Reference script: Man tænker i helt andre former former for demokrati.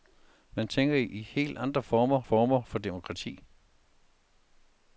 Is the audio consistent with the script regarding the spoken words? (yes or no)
yes